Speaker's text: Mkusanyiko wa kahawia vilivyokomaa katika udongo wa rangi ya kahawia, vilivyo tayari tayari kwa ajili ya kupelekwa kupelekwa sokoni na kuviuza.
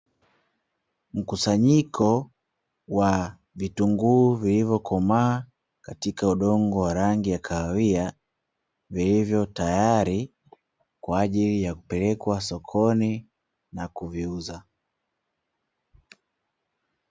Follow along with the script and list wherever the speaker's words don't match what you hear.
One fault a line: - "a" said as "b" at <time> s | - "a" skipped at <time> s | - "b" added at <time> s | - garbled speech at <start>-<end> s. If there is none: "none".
- "kahawia" said as "vitunguu" at 3.5 s
- "tayari" skipped at 10.3 s
- "kupelekwa" skipped at 12.4 s